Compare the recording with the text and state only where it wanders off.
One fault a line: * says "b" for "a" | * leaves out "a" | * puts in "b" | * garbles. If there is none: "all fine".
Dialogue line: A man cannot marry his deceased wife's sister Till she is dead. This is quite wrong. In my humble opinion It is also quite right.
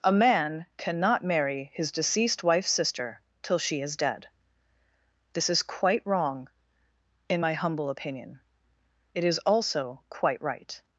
all fine